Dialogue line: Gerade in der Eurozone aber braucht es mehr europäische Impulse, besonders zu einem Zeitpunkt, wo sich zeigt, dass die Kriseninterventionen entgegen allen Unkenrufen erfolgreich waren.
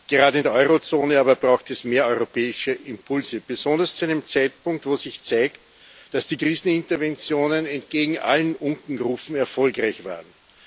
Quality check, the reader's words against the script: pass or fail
pass